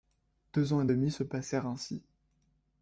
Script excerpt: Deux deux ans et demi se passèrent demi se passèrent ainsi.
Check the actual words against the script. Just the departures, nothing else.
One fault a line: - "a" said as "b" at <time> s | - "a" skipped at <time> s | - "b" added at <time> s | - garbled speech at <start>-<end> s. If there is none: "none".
- "deux" skipped at 0.7 s
- "demi se passèrent" skipped at 1.7 s